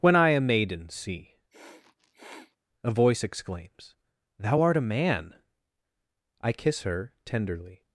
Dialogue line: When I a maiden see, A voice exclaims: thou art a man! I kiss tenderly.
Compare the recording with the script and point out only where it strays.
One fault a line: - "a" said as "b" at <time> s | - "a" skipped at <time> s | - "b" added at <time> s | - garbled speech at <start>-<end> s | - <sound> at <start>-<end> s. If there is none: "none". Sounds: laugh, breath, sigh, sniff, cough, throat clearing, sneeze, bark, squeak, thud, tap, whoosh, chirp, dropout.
- sniff at 1.5-2.6 s
- "her" added at 6.8 s